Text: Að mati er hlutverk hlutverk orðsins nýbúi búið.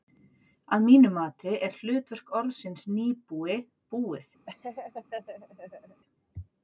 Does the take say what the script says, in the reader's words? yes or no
no